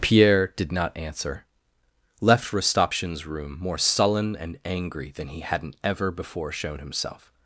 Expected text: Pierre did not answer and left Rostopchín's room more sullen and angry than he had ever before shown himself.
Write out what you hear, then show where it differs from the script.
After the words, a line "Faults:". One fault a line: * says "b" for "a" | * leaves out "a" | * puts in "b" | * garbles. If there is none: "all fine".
Pierre did not answer left Rostopchín's room more sullen and angry than he hadn't ever before shown himself.
Faults:
* leaves out "and"
* says "hadn't" for "had"